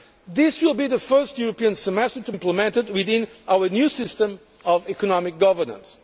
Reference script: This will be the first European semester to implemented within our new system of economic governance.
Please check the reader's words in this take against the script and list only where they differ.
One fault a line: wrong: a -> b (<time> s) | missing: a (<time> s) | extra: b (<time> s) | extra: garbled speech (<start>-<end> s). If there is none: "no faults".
no faults